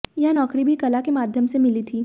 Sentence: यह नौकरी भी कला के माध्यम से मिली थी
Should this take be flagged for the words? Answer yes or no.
no